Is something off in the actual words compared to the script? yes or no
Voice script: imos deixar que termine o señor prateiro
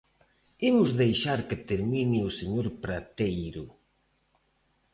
no